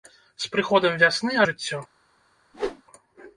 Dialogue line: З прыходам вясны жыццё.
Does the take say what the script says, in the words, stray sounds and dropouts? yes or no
no